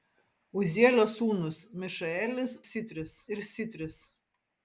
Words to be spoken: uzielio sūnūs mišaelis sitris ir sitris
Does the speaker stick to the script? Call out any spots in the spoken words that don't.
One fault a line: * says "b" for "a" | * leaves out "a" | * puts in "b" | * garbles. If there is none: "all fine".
all fine